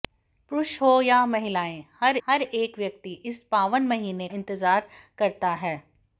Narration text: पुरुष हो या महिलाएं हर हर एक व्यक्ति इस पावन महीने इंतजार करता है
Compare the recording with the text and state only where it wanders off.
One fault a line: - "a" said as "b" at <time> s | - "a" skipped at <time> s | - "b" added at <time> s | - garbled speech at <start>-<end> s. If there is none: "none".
none